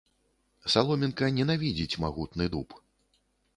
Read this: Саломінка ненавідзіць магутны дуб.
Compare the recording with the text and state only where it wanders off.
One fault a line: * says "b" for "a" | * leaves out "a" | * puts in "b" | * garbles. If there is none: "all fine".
all fine